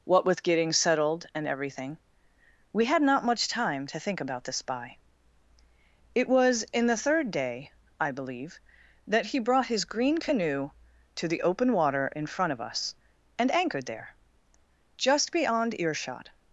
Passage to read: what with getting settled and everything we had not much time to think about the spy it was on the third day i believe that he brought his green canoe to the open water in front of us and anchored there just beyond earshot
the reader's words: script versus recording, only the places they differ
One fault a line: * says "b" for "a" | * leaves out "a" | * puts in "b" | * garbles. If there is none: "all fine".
* says "in" for "on"